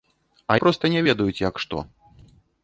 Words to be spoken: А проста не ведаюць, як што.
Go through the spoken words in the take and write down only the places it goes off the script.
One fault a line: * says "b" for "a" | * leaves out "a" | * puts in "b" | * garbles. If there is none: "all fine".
all fine